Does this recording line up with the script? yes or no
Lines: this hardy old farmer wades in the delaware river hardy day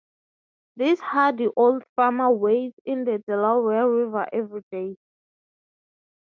no